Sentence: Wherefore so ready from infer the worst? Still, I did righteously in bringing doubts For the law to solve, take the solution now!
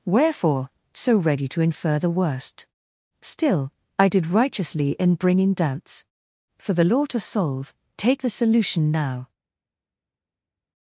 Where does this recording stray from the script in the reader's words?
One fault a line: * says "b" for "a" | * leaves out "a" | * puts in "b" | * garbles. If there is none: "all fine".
* says "to" for "from"